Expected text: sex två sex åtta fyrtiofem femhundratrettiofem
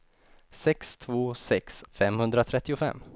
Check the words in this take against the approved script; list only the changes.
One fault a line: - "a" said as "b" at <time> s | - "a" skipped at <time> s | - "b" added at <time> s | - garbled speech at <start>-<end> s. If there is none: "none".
- "åtta fyrtiofem" skipped at 1.8 s